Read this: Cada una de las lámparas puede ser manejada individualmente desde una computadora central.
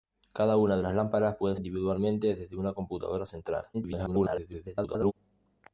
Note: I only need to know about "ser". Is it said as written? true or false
false